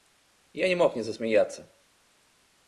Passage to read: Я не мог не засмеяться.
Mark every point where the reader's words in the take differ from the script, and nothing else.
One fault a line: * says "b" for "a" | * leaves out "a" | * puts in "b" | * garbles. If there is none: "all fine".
all fine